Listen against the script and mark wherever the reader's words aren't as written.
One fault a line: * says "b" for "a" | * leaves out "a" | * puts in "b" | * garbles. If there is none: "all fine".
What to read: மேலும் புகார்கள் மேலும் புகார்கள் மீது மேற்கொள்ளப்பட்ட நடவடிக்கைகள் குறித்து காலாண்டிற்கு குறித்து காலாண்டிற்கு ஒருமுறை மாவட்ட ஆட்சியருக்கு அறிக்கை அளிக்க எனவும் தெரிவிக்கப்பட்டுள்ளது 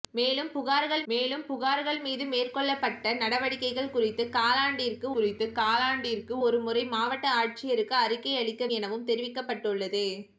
all fine